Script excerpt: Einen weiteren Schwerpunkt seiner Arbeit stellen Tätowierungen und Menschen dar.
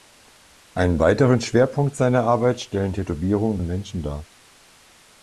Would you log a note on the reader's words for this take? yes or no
no